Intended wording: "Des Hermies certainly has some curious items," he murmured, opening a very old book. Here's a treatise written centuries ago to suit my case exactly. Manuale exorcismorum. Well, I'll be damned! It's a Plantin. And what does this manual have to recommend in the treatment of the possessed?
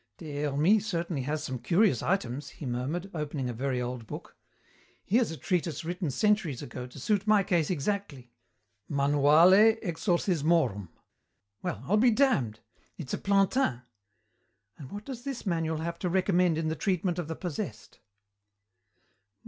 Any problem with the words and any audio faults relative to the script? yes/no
no